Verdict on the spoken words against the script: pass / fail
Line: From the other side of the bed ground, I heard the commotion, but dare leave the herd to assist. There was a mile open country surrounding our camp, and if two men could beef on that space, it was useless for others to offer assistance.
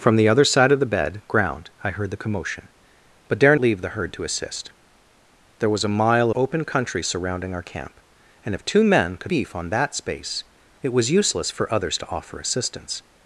pass